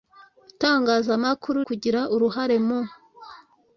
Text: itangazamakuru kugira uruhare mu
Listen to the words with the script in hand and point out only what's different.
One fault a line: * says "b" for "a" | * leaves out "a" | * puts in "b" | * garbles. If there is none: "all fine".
all fine